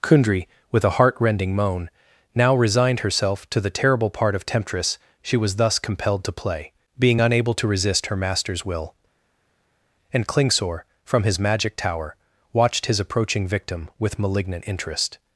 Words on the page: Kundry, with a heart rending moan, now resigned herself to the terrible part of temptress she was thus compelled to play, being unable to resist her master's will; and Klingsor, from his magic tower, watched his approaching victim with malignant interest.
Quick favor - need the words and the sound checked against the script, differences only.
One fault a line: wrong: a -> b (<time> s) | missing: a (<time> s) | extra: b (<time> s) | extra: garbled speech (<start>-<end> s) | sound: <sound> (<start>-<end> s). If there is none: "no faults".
no faults